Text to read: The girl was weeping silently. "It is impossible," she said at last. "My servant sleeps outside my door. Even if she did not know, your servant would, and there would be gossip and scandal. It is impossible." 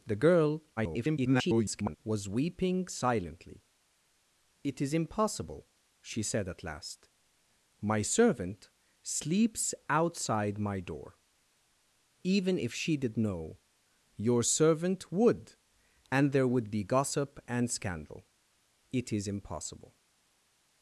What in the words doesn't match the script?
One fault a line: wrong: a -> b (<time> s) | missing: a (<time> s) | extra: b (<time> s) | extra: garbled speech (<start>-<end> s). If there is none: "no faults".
extra: garbled speech (0.8-2.0 s)
missing: not (13.2 s)